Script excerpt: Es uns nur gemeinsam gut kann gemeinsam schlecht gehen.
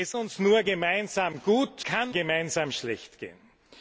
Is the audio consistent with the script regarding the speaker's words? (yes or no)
yes